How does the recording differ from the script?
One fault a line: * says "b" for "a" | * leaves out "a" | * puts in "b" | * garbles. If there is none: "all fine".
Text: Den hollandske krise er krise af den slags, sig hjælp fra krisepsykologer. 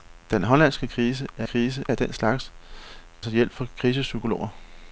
all fine